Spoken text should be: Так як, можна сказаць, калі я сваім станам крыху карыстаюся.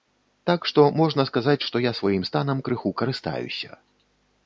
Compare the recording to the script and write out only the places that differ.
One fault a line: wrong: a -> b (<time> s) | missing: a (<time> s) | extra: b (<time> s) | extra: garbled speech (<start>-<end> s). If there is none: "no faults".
wrong: як -> што (0.7 s)
wrong: калі -> што (1.7 s)